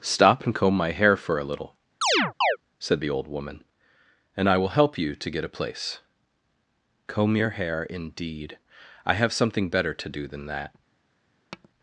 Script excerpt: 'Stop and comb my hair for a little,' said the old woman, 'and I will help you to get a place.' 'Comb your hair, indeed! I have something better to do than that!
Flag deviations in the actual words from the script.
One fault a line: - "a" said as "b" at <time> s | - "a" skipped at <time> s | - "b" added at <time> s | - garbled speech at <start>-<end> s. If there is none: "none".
none